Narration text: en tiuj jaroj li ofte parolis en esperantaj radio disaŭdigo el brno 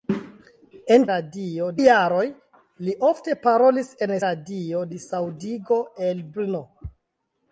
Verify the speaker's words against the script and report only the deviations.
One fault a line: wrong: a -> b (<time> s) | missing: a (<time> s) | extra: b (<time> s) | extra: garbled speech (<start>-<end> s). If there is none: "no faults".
wrong: tiuj -> radio (1.2 s)
missing: esperantaj (4.2 s)